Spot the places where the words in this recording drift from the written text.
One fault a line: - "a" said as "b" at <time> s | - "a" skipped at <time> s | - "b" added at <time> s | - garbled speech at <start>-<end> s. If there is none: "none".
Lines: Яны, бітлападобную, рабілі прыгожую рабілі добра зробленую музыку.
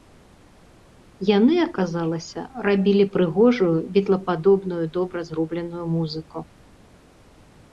- "бітлападобную" said as "аказалася" at 1.6 s
- "рабілі" said as "бітлападобную" at 4.0 s